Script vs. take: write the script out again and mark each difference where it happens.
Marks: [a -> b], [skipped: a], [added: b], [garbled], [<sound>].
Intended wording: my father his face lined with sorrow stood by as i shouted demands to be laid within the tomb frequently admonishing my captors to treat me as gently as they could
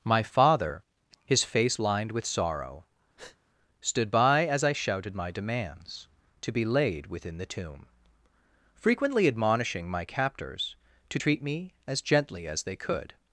my father his face lined with sorrow [breath] stood by as i shouted [added: my] demands to be laid within the tomb frequently admonishing my captors to treat me as gently as they could